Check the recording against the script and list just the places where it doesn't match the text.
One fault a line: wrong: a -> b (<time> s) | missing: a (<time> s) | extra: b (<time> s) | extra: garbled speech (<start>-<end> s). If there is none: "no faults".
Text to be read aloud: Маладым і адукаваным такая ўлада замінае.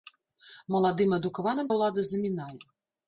missing: такая (1.7 s)